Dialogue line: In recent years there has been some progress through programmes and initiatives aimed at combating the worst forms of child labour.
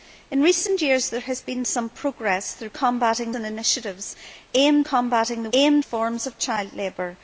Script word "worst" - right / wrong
wrong